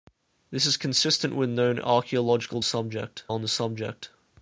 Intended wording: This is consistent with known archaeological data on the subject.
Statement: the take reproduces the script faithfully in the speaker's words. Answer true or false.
false